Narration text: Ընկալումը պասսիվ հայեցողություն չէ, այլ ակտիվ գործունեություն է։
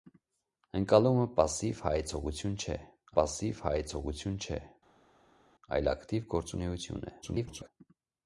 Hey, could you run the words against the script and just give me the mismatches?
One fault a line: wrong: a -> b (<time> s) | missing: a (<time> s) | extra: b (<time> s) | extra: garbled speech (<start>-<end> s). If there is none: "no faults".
extra: պասսիվ հայեցողություն չէ (3.2 s)
extra: garbled speech (7.2-7.7 s)